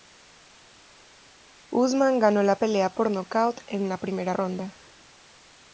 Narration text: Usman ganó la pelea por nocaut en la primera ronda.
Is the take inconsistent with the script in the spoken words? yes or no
no